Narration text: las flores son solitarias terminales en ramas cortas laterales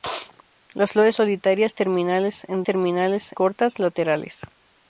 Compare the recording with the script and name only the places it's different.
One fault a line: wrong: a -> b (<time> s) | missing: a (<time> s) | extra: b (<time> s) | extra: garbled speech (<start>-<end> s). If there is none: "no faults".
missing: son (1.1 s)
wrong: ramas -> terminales (2.6 s)